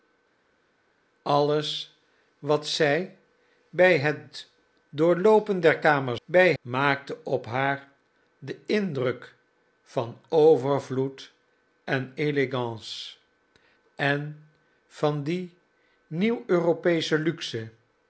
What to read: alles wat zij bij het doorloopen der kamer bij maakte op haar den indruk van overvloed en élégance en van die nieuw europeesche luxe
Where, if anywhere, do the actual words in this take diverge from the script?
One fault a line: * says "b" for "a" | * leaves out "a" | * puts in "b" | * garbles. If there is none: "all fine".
all fine